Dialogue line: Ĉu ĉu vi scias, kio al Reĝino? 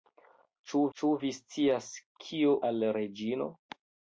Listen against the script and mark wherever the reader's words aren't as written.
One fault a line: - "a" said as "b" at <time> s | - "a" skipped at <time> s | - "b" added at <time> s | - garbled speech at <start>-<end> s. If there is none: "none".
none